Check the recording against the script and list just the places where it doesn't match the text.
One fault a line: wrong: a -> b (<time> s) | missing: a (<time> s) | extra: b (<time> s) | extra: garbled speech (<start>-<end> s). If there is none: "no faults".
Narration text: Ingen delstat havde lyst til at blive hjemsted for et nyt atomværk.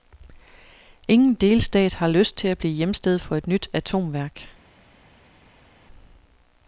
wrong: havde -> har (1.9 s)